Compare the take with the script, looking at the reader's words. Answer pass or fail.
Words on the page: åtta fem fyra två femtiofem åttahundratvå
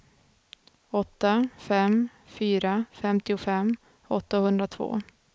fail